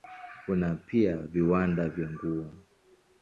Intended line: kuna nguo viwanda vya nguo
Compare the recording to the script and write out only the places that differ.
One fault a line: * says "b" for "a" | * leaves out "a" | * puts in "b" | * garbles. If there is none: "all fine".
* says "pia" for "nguo"